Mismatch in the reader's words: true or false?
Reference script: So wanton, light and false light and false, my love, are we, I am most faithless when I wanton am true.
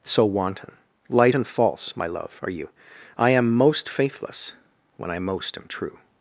true